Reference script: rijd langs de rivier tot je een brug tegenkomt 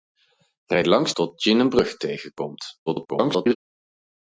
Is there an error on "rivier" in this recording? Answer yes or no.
yes